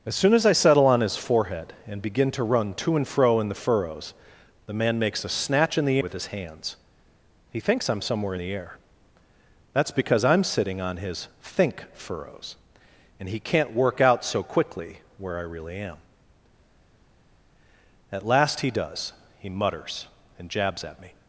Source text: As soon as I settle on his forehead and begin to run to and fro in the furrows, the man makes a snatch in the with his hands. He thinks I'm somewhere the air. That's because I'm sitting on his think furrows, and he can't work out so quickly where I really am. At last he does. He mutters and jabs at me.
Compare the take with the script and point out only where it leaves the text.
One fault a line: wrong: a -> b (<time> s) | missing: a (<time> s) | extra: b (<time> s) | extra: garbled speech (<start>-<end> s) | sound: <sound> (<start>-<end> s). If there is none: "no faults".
no faults